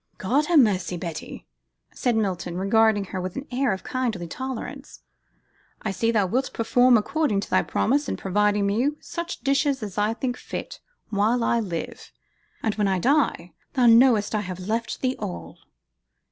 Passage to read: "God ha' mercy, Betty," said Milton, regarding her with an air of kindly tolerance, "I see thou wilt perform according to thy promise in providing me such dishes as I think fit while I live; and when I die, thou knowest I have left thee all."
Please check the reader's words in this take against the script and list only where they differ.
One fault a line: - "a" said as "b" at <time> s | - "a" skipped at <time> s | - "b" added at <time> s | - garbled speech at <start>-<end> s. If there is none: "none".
none